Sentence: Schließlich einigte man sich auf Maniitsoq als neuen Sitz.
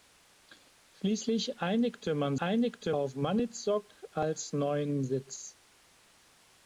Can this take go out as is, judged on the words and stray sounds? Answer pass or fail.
fail